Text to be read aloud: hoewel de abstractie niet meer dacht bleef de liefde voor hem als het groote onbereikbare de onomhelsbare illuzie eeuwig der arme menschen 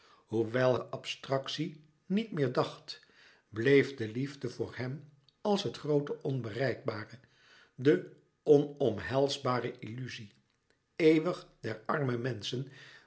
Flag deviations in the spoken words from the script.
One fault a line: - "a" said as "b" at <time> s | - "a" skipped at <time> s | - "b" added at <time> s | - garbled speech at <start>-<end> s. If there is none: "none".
none